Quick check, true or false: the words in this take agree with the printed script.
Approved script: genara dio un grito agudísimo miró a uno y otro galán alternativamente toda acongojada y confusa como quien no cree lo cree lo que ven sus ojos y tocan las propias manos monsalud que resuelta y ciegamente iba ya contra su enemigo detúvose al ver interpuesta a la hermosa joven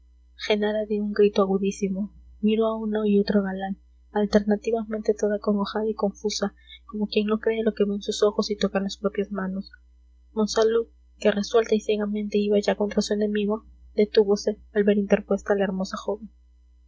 false